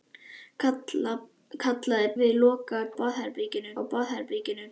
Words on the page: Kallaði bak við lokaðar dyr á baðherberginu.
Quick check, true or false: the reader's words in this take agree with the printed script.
false